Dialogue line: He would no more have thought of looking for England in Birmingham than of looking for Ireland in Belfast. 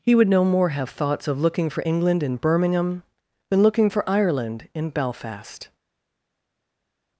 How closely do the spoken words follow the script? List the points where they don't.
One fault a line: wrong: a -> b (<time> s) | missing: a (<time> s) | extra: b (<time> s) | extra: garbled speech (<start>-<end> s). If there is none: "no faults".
wrong: thought -> thoughts (0.9 s)
missing: of (3.6 s)